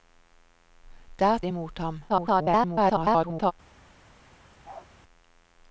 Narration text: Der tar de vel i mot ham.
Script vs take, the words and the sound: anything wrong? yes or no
yes